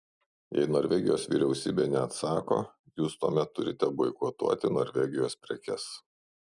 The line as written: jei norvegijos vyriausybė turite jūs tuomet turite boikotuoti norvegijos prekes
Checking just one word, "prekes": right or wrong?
right